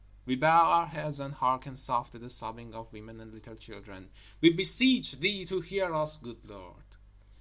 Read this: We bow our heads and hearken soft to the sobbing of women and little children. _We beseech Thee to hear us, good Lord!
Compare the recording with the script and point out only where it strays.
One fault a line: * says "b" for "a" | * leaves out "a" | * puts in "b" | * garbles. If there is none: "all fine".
all fine